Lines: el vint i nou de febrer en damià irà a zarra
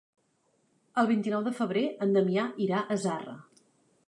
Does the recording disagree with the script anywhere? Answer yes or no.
no